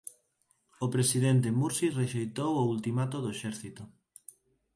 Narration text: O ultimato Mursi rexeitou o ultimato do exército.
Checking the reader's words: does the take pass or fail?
fail